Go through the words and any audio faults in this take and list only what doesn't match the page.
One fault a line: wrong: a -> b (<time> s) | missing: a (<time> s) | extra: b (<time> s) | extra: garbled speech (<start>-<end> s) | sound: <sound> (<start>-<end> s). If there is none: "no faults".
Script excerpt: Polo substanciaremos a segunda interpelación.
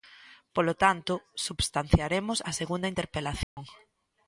extra: tanto (0.8 s)
sound: dropout (3.4-3.6 s)